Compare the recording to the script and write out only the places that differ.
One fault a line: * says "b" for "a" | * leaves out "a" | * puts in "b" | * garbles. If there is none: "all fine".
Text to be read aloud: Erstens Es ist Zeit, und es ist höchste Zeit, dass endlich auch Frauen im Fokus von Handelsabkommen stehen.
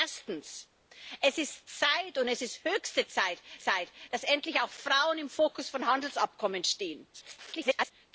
* puts in "Zeit"
* garbles